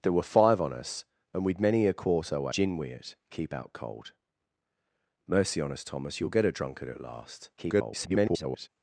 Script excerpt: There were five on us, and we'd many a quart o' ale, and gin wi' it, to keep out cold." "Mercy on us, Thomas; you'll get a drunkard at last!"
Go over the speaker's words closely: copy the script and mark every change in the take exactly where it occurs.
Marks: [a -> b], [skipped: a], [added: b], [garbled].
There were five on us, and we'd many a quart o' [skipped: ale, and] gin wi' it, [skipped: to] keep out cold." "Mercy on us, Thomas; you'll get a drunkard at last!" [garbled]